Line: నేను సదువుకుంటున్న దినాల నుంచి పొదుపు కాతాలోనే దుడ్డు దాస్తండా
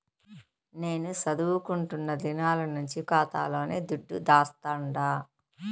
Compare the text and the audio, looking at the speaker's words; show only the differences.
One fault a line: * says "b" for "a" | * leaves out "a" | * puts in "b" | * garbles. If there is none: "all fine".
* leaves out "పొదుపు"